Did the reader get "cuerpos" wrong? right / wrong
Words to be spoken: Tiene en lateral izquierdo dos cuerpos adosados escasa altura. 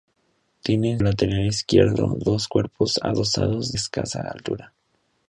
right